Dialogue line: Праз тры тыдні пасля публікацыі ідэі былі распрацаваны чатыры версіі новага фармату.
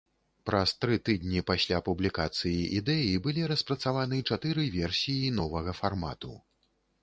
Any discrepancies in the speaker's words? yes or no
no